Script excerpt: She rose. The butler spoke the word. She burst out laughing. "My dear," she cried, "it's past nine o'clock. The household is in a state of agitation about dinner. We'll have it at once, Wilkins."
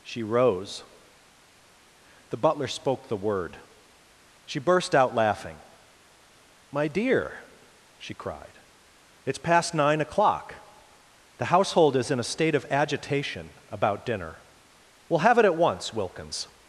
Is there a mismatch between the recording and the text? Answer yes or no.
no